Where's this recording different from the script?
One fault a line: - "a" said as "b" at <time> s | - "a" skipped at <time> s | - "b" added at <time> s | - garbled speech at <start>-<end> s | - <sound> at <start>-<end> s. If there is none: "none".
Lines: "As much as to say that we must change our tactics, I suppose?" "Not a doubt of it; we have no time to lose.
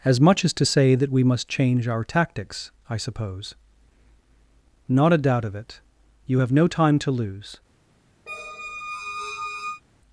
- "we" said as "you" at 6.3 s
- squeak at 8.3-9.8 s